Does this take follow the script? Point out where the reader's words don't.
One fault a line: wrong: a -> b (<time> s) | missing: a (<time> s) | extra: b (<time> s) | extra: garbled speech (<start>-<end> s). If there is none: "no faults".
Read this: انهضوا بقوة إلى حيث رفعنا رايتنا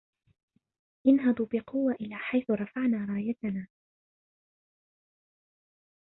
no faults